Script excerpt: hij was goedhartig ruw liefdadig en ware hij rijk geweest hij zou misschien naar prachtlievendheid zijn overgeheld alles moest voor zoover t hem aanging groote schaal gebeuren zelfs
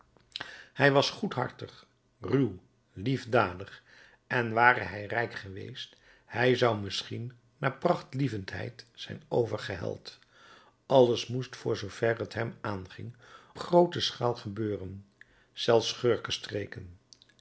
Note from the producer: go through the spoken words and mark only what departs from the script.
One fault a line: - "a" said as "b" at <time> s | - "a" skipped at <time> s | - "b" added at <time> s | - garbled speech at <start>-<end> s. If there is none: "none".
none